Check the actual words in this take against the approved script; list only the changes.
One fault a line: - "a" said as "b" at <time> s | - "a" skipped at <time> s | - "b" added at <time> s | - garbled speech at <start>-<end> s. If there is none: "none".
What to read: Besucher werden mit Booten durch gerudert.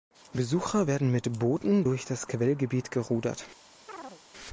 - "das Quellgebiet" added at 2.0 s